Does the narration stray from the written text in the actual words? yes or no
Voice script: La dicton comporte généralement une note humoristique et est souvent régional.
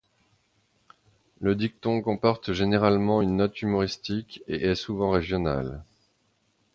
yes